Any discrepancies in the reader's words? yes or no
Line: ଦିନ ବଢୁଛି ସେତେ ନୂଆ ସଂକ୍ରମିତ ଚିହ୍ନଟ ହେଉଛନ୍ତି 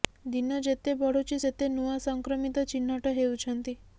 yes